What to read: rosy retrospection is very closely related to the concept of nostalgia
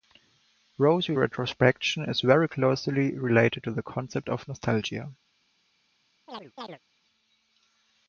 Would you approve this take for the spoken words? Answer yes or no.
yes